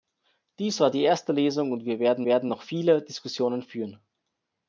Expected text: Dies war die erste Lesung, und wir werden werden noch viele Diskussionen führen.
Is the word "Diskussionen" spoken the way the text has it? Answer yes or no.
yes